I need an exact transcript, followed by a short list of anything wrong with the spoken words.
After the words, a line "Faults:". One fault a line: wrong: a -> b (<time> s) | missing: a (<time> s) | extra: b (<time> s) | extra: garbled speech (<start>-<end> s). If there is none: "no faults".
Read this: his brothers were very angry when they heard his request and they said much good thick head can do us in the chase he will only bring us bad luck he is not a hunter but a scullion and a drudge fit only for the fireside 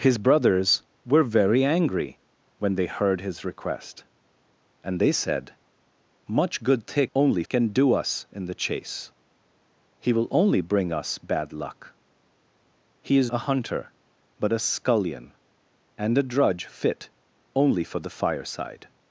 his brothers were very angry when they heard his request and they said much good thick only can do us in the chase he will only bring us bad luck he is a hunter but a scullion and a drudge fit only for the fireside
Faults:
wrong: head -> only (7.1 s)
missing: not (13.3 s)